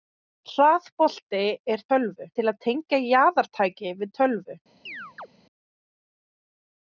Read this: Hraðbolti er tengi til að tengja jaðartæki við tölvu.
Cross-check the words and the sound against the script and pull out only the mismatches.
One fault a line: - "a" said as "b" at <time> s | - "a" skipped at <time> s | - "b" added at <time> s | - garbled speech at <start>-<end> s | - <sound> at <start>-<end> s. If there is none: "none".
- "tengi" said as "tölvu" at 1.9 s
- chirp at 4.9-5.3 s